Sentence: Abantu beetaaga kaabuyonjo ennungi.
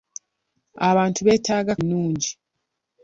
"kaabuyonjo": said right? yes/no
no